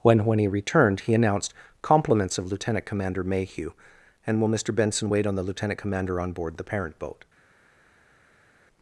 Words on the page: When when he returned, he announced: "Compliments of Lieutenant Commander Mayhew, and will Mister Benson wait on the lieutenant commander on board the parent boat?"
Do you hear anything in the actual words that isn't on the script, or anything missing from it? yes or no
no